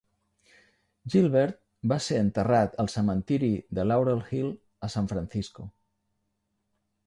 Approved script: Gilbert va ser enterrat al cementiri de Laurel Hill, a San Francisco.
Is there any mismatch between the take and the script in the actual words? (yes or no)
no